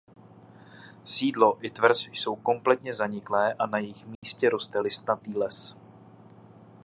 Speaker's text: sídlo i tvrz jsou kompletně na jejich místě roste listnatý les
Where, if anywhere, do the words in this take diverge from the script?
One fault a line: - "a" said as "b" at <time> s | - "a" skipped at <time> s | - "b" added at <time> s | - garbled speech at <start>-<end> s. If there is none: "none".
- "zaniklé a" added at 2.9 s